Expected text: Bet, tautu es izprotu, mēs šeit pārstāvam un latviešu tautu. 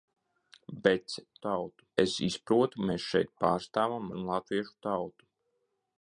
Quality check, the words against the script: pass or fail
pass